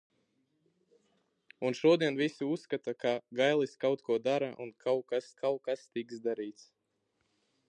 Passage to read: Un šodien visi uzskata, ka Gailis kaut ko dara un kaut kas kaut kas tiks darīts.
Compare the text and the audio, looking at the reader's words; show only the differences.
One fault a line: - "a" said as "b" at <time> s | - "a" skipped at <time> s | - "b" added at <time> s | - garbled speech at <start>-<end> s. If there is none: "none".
none